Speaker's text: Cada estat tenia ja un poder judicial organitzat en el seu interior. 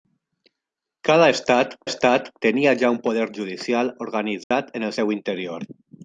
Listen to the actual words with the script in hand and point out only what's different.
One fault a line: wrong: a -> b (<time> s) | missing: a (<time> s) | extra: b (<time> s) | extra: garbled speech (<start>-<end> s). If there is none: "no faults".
extra: estat (1.9 s)